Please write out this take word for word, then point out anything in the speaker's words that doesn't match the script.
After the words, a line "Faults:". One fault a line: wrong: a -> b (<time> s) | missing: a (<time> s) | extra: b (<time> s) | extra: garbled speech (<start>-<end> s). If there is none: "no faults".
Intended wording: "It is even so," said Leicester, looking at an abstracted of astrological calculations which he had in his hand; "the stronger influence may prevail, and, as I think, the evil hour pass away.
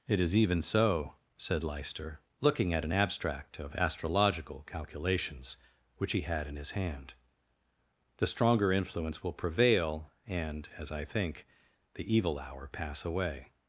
"It is even so," said Leicester, looking at an abstract of astrological calculations which he had in his hand; "the stronger influence will prevail, and, as I think, the evil hour pass away.
Faults:
wrong: abstracted -> abstract (2.9 s)
wrong: may -> will (9.2 s)